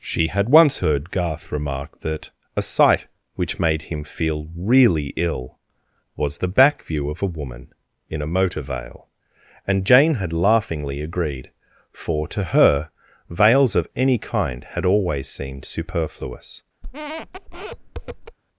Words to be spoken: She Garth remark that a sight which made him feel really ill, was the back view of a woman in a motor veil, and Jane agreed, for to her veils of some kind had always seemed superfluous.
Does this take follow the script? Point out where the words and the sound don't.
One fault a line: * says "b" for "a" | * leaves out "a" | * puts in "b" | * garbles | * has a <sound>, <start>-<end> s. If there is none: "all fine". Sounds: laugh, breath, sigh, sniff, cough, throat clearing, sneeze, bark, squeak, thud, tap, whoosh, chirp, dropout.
* puts in "had once heard"
* puts in "had laughingly"
* says "any" for "some"
* has a squeak, 16.8-18.4 s